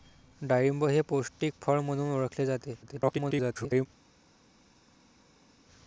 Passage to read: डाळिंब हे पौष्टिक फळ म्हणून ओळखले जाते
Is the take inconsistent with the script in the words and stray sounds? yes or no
yes